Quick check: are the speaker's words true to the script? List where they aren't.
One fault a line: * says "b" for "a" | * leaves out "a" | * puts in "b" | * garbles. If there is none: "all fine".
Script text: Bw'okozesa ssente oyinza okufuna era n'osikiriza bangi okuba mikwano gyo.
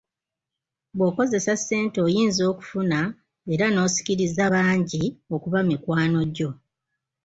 all fine